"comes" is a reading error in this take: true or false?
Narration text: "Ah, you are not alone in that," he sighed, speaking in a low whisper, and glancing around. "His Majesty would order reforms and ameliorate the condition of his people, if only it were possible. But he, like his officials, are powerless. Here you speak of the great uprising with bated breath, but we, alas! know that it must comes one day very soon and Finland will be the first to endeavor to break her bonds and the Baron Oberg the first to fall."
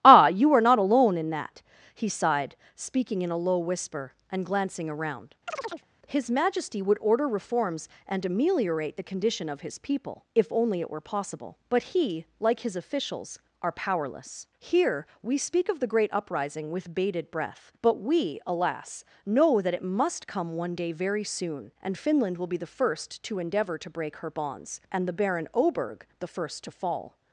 true